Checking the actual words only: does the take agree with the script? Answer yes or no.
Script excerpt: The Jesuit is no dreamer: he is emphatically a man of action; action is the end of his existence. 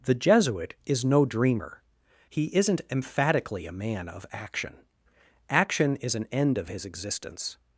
no